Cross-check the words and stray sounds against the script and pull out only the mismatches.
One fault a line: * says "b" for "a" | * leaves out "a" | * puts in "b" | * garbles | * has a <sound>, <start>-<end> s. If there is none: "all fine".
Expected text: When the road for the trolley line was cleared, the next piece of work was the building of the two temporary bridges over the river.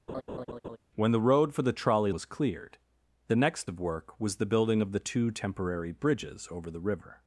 * has a laugh, 0.1-0.8 s
* leaves out "line"
* leaves out "piece"